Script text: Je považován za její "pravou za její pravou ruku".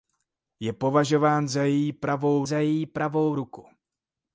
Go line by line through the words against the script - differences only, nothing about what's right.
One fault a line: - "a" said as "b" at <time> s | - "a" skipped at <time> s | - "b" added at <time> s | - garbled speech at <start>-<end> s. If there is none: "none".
none